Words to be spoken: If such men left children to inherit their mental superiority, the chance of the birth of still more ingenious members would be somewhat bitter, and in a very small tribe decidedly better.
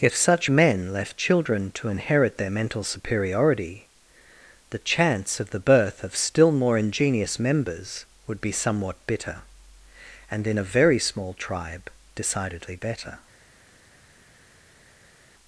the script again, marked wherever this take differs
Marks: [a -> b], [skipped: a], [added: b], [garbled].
If such men left children to inherit their mental superiority, the chance of the birth of still more ingenious members would be somewhat bitter, and in a very small tribe decidedly better.